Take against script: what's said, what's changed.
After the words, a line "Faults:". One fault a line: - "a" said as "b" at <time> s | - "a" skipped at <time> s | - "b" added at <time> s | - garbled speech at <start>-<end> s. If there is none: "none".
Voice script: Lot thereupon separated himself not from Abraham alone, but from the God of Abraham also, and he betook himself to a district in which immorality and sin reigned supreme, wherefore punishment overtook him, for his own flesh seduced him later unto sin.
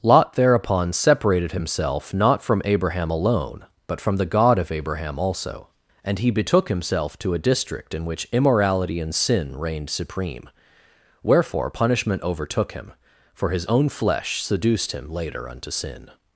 Lot thereupon separated himself not from Abraham alone, but from the God of Abraham also, and he betook himself to a district in which immorality and sin reigned supreme, wherefore punishment overtook him, for his own flesh seduced him later unto sin.
Faults:
none